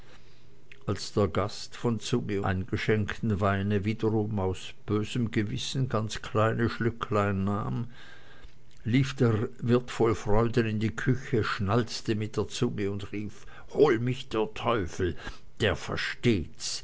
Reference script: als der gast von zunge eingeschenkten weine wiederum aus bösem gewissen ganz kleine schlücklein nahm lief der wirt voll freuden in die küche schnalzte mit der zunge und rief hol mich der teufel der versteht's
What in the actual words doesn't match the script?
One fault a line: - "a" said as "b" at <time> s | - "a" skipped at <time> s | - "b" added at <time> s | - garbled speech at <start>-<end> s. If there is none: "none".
none